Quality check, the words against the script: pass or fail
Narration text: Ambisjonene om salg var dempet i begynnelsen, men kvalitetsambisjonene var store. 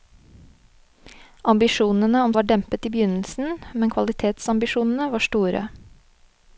fail